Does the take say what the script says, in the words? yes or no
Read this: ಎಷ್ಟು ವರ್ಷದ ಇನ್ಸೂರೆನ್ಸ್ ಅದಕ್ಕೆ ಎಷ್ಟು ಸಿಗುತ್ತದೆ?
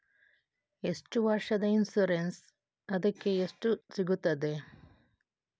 yes